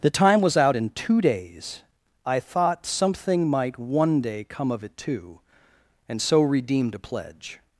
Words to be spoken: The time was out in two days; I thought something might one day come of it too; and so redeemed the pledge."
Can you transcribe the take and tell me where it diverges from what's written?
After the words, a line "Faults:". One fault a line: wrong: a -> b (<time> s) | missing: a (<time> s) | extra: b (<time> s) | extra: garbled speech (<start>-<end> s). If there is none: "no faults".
The time was out in two days; I thought something might one day come of it too; and so redeemed a pledge."
Faults:
wrong: the -> a (6.9 s)